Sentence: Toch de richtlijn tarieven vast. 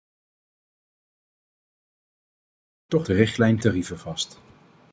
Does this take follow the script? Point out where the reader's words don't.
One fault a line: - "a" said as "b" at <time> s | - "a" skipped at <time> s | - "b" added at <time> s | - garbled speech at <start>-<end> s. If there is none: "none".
none